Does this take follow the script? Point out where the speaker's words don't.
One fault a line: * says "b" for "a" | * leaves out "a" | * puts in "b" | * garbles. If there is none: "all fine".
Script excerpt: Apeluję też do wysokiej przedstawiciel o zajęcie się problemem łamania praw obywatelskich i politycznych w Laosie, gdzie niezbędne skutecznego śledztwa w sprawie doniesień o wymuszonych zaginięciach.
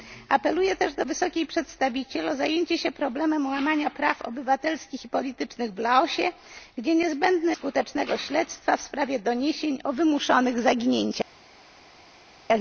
all fine